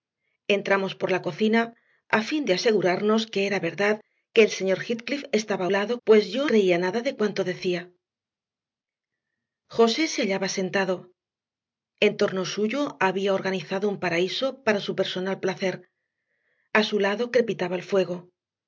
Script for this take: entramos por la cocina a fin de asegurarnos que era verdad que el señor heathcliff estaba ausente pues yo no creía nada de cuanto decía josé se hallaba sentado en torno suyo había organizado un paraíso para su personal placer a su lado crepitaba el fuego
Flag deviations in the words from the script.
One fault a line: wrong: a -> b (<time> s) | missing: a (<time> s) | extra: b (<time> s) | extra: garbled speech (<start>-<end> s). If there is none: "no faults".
wrong: ausente -> lado (5.7 s)
missing: no (6.4 s)